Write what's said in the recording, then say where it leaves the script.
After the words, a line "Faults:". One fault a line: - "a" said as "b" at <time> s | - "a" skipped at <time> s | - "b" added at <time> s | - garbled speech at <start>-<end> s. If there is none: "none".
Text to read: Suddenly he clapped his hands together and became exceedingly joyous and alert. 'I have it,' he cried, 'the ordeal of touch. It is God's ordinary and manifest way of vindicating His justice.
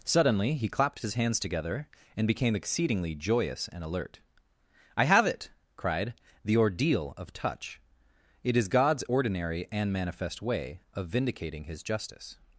Suddenly he clapped his hands together and became exceedingly joyous and alert. 'I have it,' cried, 'the ordeal of touch. It is God's ordinary and manifest way of vindicating His justice.
Faults:
- "he" skipped at 5.5 s